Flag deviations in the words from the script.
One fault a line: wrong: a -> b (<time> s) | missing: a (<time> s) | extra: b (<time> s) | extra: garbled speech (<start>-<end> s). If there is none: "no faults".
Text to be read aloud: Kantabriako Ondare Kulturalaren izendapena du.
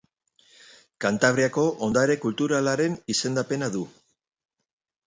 no faults